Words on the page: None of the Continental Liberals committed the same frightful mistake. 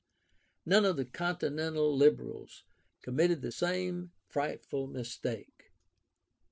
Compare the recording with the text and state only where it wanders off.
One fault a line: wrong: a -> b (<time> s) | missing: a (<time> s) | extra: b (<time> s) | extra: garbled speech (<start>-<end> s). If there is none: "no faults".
no faults